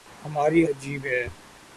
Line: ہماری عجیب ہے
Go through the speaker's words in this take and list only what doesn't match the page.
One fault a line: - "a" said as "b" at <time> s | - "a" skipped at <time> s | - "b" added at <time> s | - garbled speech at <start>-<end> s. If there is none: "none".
none